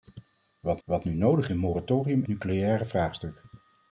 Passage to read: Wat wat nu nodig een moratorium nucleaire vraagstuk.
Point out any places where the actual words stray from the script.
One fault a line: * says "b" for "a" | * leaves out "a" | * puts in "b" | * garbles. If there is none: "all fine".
all fine